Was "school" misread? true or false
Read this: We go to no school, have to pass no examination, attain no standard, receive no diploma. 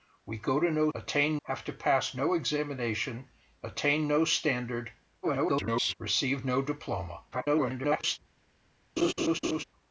true